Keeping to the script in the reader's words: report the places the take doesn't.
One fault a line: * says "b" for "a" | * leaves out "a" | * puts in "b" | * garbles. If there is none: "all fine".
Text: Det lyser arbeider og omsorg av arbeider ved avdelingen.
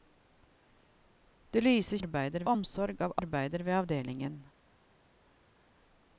all fine